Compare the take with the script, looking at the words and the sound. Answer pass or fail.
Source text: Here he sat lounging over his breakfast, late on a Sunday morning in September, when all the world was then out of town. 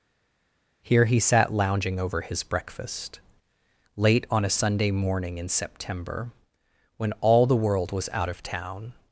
fail